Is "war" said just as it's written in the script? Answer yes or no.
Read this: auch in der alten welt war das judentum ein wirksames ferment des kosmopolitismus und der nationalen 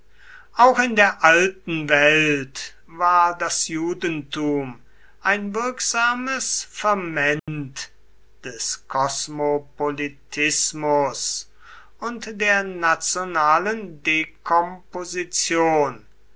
yes